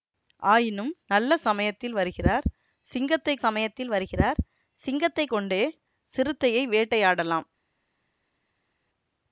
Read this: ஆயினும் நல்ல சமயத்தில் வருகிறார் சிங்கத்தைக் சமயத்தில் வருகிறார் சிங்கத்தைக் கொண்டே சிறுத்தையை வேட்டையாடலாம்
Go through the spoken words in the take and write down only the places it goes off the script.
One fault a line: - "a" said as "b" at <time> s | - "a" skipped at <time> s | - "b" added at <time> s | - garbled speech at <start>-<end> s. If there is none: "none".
none